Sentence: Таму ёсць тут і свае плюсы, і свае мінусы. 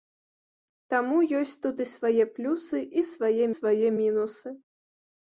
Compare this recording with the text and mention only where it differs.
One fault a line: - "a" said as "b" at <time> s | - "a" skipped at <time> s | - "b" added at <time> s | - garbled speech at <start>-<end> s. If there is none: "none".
- "свае" added at 3.6 s